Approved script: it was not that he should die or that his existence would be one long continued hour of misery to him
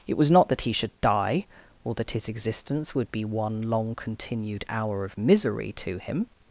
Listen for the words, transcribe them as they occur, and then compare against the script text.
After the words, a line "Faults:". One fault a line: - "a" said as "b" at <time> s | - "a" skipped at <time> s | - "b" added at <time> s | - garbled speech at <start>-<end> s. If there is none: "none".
it was not that he should die or that his existence would be one long continued hour of misery to him
Faults:
none